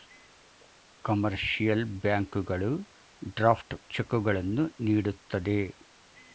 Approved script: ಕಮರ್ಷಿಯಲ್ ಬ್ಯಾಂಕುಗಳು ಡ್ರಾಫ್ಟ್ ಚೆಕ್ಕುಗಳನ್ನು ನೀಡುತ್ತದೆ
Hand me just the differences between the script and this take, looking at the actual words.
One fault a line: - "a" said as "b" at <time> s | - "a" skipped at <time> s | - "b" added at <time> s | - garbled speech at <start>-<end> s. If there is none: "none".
none